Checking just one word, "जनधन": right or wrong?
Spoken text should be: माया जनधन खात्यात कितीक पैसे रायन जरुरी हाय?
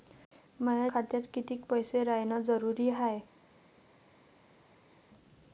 wrong